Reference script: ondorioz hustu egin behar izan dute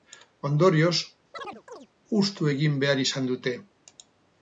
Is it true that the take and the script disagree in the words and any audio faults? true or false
true